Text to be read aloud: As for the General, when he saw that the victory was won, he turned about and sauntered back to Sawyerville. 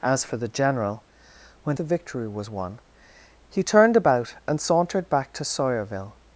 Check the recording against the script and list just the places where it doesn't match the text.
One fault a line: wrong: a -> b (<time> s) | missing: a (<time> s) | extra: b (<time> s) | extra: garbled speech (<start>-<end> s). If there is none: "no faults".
missing: he saw that (1.8 s)